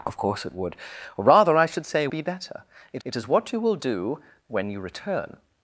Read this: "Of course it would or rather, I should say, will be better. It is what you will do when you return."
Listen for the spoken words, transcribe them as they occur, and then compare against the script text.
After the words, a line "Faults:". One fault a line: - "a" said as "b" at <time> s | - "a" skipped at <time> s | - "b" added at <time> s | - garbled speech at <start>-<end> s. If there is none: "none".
"Of course it would or rather, I should say, be better. It it is what you will do when you return."
Faults:
- "will" skipped at 2.1 s
- "it" added at 3.0 s